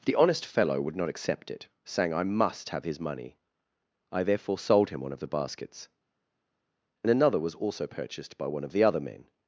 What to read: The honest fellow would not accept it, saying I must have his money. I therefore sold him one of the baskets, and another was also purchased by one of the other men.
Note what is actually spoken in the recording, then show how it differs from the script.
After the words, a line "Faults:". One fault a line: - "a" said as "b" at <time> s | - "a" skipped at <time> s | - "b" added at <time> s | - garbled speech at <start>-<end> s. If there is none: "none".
The honest fellow would not accept it, saying I must have his money. I therefore sold him one of the baskets, and another was also purchased by one of the other men.
Faults:
none